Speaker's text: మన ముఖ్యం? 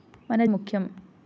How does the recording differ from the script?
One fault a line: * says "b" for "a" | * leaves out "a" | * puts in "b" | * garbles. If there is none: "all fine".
all fine